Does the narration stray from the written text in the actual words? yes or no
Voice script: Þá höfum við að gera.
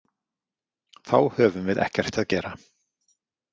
yes